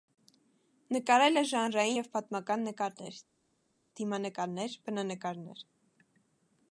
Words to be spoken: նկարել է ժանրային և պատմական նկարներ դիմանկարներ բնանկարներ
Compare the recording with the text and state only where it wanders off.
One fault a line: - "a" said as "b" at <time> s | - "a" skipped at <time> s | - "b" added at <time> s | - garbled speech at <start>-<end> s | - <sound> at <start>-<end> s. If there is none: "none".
none